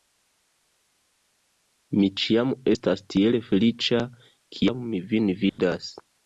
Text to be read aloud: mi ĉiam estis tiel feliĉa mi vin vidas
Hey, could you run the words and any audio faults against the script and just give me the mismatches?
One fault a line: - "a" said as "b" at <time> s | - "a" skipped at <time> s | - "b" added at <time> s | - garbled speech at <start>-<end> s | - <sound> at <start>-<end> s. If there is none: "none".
- "estis" said as "estas" at 2.7 s
- "kiam" added at 4.6 s
- dropout at 5.5-5.6 s